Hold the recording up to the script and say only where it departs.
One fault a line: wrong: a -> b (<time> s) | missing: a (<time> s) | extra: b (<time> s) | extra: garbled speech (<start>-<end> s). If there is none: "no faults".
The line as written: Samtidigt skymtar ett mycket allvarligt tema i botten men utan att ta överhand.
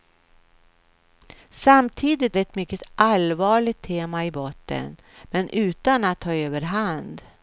missing: skymtar (2.4 s)